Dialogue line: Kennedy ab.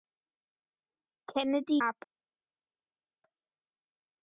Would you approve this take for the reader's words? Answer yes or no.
yes